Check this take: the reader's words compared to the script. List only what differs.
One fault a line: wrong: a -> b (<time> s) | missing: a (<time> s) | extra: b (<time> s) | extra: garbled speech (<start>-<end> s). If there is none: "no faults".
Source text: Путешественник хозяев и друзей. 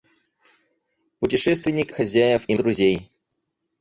no faults